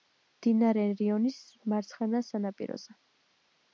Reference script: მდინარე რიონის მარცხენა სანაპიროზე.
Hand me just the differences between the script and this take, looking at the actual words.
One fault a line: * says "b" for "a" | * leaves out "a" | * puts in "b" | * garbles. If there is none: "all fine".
all fine